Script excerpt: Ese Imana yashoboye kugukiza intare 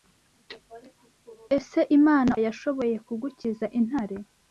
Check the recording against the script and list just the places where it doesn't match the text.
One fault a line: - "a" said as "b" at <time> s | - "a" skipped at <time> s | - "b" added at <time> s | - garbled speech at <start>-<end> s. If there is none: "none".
none